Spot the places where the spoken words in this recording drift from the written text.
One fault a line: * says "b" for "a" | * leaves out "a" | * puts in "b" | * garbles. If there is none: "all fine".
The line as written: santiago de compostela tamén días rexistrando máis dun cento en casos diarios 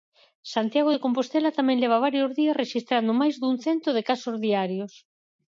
* puts in "leva varios"
* says "de" for "en"